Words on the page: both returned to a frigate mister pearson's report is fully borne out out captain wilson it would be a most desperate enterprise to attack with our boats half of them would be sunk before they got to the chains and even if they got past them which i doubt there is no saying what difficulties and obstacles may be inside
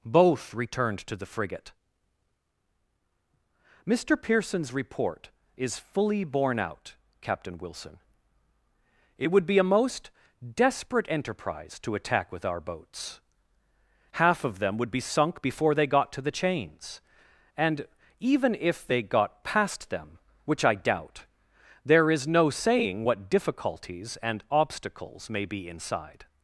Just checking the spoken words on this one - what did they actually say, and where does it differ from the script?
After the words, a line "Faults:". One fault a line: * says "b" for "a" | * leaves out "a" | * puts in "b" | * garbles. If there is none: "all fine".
both returned to the frigate mister pearson's report is fully borne out captain wilson it would be a most desperate enterprise to attack with our boats half of them would be sunk before they got to the chains and even if they got past them which i doubt there is no saying what difficulties and obstacles may be inside
Faults:
* says "the" for "a"
* leaves out "out"